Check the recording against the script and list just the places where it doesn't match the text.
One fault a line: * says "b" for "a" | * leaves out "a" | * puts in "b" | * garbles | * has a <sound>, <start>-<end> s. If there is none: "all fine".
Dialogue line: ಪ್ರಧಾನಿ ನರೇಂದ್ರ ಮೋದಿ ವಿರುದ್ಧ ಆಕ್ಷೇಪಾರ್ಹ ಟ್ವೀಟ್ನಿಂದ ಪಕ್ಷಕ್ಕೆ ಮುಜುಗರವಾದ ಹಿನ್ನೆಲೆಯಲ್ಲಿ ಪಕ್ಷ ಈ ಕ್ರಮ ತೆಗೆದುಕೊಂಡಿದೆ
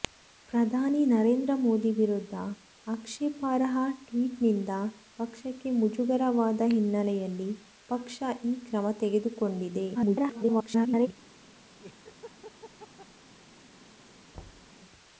* garbles
* has a laugh, 11.8-13.1 s
* has a thud, 14.3-14.7 s